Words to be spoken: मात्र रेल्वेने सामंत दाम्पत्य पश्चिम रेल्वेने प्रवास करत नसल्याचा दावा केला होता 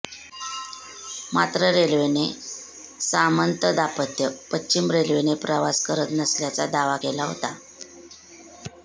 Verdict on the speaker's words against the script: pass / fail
pass